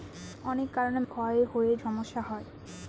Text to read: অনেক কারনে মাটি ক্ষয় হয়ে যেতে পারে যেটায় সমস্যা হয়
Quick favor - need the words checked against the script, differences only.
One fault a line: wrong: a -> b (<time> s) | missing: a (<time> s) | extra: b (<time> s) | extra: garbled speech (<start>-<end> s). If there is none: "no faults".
missing: মাটি (1.0 s)
missing: যেতে পারে যেটায় (1.7 s)